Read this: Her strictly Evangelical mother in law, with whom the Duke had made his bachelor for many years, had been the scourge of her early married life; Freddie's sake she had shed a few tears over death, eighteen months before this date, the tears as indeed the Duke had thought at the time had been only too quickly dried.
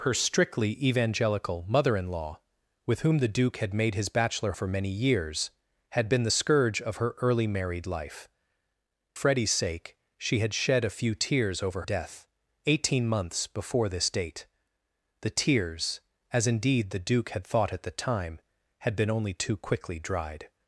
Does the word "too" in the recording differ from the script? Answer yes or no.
no